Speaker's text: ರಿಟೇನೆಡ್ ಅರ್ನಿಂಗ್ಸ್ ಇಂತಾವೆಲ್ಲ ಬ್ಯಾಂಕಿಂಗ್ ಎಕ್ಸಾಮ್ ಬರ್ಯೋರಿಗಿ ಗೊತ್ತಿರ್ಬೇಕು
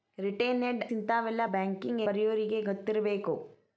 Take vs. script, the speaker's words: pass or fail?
fail